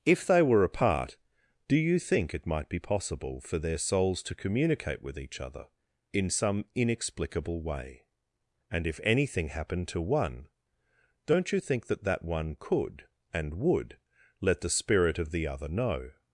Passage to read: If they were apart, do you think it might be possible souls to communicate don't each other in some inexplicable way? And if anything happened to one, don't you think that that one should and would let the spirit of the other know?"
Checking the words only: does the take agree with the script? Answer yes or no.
no